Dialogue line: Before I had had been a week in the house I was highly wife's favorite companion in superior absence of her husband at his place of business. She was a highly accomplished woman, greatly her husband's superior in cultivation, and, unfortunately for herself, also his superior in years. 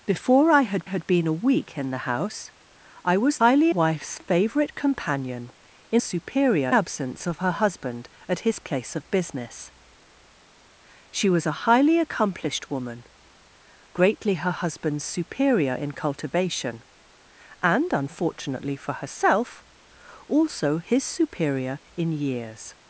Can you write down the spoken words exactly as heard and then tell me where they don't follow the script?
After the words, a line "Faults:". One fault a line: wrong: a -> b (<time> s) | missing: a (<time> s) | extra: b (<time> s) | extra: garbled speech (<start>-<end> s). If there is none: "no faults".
Before I had had been a week in the house I was highly wife's favorite companion in superior absence of her husband at his place of business. She was a highly accomplished woman, greatly her husband's superior in cultivation, and, unfortunately for herself, also his superior in years.
Faults:
no faults